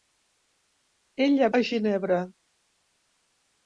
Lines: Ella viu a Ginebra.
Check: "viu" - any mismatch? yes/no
yes